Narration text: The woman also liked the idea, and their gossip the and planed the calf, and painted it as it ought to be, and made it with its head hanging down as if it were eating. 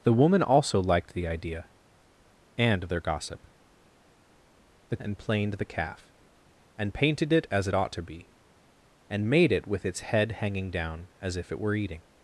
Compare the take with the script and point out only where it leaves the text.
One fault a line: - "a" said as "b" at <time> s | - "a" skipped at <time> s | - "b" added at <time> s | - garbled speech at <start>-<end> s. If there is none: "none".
none